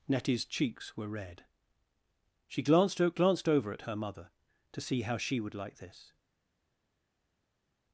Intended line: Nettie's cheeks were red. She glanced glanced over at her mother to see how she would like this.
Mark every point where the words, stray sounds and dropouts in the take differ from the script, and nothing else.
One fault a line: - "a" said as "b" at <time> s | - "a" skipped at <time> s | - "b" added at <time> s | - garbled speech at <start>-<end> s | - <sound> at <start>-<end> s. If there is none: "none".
none